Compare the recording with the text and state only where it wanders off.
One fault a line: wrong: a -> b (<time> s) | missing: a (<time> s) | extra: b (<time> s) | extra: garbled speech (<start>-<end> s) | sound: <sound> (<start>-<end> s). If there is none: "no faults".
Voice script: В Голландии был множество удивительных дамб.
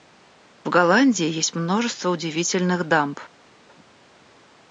wrong: был -> есть (1.3 s)